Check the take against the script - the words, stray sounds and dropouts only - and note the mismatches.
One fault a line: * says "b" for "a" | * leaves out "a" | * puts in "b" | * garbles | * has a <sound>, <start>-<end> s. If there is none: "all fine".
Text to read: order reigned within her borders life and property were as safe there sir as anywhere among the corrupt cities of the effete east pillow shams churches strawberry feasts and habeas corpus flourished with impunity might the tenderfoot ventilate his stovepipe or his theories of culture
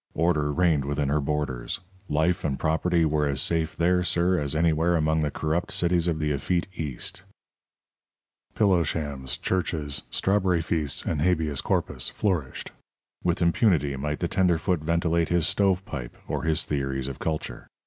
all fine